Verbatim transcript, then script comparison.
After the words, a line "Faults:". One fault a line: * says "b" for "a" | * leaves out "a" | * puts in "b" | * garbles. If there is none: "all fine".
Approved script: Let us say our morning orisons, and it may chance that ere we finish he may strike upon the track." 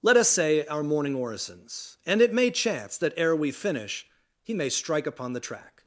Let us say our morning orisons, and it may chance that ere we finish he may strike upon the track."
Faults:
all fine